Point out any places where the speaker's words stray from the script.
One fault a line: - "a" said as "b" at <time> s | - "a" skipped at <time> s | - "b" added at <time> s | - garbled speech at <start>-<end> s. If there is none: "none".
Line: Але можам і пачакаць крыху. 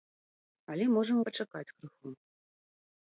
none